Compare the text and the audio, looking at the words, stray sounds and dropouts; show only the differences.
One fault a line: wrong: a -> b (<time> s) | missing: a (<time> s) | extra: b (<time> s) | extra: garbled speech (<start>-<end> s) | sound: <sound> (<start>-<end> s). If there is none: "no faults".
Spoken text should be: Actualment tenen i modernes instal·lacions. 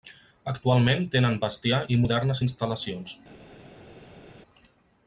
extra: bestiar (1.4 s)